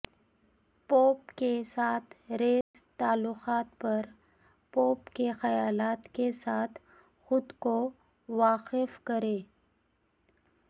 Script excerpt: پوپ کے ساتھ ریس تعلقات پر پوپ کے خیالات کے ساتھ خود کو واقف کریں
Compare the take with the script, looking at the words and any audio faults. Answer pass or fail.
fail